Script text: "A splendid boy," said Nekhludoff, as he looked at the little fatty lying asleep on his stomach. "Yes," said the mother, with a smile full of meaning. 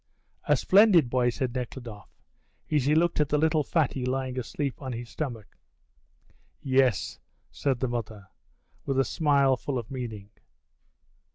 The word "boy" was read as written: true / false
true